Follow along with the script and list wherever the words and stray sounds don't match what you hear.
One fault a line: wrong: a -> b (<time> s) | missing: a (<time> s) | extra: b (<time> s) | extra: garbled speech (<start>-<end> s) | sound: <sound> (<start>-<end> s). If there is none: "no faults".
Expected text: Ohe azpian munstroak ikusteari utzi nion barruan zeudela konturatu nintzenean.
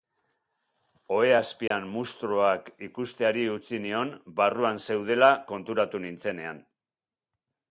sound: dropout (1.7-1.7 s)